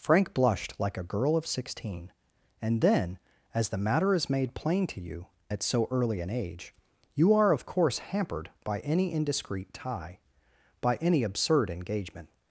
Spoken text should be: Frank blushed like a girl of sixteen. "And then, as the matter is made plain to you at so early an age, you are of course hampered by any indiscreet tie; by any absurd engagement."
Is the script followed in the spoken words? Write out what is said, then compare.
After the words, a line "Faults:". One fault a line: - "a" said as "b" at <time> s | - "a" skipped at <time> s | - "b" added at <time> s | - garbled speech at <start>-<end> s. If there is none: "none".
Frank blushed like a girl of sixteen. "And then, as the matter is made plain to you at so early an age, you are of course hampered by any indiscreet tie; by any absurd engagement."
Faults:
none